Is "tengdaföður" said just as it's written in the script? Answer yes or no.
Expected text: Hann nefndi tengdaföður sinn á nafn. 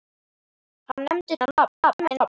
no